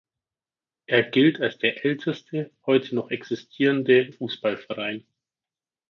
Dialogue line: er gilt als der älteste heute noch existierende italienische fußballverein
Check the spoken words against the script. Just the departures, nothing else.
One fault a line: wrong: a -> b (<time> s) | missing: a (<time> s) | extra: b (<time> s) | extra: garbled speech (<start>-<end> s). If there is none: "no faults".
missing: italienische (4.0 s)